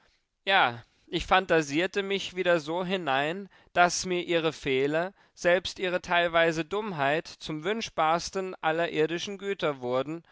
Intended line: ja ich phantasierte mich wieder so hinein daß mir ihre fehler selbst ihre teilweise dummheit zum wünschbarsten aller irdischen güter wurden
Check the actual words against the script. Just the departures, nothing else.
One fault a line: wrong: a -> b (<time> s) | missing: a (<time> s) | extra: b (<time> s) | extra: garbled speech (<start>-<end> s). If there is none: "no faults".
no faults